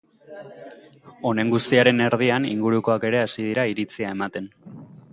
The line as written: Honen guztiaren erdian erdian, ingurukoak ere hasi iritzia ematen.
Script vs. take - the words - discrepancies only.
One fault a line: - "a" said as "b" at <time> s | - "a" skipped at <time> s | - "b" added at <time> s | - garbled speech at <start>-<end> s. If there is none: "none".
- "erdian" skipped at 2.5 s
- "dira" added at 3.5 s